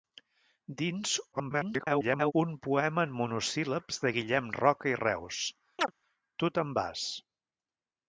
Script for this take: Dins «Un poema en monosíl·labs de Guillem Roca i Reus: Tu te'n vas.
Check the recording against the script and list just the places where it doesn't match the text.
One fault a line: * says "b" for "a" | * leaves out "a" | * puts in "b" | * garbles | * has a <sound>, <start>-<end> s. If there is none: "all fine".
* garbles
* has a chirp, 5.8-5.9 s